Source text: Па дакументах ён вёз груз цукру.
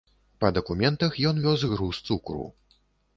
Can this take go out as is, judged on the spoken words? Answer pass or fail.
pass